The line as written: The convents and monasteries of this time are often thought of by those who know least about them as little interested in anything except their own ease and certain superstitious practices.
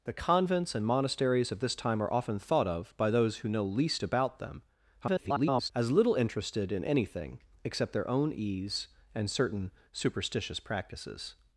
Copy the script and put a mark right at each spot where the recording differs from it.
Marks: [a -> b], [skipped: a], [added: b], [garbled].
The convents and monasteries of this time are often thought of by those who know least about them [garbled] as little interested in anything except their own ease and certain superstitious practices.